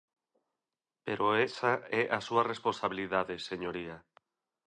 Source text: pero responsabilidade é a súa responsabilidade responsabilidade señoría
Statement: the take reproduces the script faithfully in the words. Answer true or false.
false